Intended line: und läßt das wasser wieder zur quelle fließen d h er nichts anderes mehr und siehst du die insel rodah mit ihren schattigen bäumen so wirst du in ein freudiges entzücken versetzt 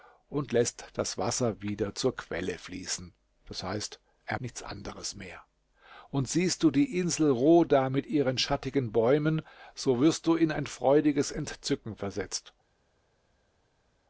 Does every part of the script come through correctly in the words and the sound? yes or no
yes